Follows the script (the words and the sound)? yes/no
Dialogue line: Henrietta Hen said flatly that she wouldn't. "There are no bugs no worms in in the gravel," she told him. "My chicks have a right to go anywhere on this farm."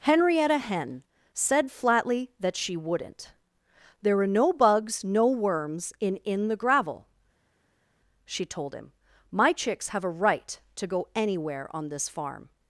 yes